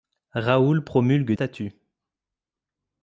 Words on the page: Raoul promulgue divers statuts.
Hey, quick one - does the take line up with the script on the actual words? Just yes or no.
no